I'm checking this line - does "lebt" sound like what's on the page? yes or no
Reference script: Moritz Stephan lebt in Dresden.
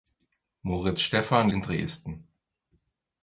no